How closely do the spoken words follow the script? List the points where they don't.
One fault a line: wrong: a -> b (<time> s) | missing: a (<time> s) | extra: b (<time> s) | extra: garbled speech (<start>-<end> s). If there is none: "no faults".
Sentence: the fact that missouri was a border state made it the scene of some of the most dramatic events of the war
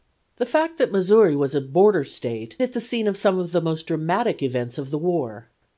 missing: made (2.6 s)